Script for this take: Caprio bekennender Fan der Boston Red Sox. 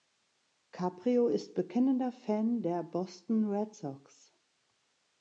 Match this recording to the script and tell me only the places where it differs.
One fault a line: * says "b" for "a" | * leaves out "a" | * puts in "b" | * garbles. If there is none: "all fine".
* puts in "ist"